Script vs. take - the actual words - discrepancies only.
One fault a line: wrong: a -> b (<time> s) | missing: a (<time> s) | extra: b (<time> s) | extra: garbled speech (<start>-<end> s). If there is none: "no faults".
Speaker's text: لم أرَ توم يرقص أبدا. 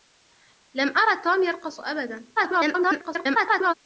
extra: garbled speech (2.4-3.7 s)